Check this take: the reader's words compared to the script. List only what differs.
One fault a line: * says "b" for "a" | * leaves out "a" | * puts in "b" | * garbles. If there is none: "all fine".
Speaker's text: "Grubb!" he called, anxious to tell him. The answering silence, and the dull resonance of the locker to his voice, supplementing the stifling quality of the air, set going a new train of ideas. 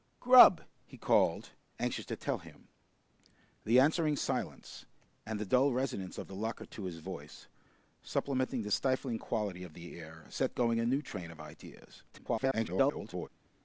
* garbles